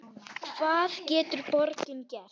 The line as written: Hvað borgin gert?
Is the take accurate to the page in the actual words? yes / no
no